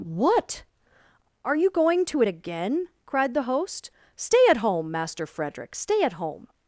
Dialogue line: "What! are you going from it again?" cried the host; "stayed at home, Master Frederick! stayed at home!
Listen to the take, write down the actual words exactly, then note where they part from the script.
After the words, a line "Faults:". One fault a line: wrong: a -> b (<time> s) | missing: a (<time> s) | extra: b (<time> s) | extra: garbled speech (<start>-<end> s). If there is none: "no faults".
"What! are you going to it again?" cried the host; "stay at home, Master Frederick! stay at home!
Faults:
wrong: from -> to (2.0 s)
wrong: stayed -> stay (4.1 s)
wrong: stayed -> stay (5.7 s)